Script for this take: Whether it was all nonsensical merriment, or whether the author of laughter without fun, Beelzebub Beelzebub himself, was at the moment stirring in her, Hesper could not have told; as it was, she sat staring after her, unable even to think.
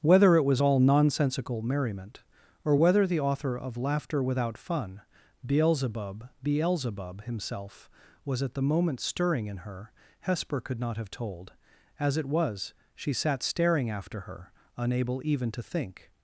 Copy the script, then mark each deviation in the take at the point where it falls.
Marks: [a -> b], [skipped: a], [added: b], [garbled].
Whether it was all nonsensical merriment, or whether the author of laughter without fun, Beelzebub Beelzebub himself, was at the moment stirring in her, Hesper could not have told; as it was, she sat staring after her, unable even to think.